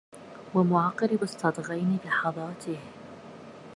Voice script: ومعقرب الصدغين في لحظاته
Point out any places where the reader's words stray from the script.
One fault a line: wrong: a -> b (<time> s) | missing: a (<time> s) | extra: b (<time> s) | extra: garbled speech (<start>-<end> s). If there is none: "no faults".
missing: في (2.0 s)